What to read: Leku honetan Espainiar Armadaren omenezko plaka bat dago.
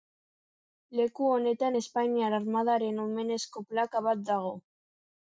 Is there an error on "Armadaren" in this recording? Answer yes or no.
no